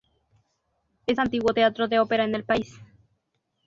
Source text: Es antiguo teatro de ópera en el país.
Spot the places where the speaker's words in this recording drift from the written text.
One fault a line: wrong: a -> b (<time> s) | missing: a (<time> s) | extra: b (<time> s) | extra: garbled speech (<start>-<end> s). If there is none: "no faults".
no faults